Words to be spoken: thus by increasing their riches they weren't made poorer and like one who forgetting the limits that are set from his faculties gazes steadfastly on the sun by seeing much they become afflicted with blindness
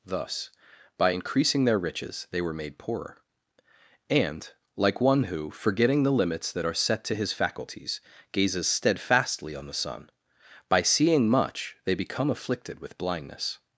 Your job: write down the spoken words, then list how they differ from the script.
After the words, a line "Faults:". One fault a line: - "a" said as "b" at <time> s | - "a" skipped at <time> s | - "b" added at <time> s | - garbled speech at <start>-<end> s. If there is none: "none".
thus by increasing their riches they were made poorer and like one who forgetting the limits that are set to his faculties gazes steadfastly on the sun by seeing much they become afflicted with blindness
Faults:
- "weren't" said as "were" at 2.4 s
- "from" said as "to" at 7.0 s